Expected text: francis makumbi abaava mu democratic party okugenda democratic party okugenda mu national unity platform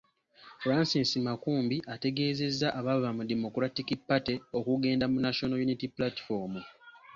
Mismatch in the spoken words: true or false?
true